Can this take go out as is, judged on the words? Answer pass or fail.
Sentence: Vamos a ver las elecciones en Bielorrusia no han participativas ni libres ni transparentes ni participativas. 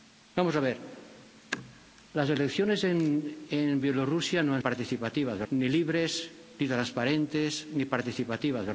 pass